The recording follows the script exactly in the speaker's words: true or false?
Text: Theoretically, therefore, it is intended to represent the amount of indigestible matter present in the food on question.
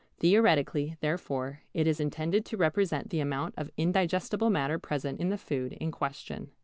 false